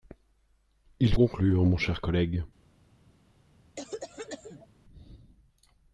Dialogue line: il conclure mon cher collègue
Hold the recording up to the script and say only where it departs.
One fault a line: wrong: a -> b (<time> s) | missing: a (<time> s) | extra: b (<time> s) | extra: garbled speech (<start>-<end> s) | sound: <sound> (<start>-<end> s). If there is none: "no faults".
sound: cough (3.8-4.7 s)